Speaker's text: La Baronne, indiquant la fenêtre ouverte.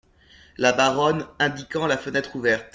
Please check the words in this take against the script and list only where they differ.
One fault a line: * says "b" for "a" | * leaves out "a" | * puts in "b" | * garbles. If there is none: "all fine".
all fine